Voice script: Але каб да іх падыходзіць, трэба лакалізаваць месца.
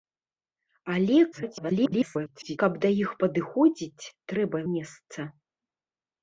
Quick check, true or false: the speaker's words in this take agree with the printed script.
false